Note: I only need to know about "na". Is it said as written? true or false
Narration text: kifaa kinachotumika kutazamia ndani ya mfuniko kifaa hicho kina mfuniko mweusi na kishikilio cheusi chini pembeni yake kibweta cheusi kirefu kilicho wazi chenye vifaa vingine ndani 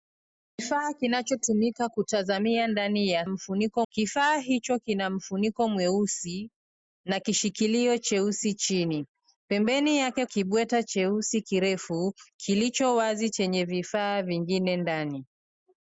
true